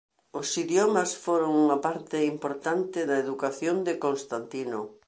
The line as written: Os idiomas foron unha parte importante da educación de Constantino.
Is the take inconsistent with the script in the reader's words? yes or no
no